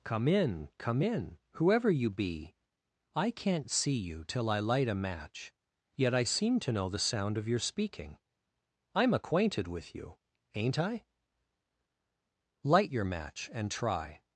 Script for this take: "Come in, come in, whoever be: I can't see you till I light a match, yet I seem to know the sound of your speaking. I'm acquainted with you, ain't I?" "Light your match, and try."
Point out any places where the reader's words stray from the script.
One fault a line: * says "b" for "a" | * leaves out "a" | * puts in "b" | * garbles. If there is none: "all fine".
* puts in "you"